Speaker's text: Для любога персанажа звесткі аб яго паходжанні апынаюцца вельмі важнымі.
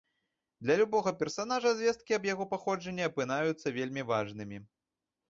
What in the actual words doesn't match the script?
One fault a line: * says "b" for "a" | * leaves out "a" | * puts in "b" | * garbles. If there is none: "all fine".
all fine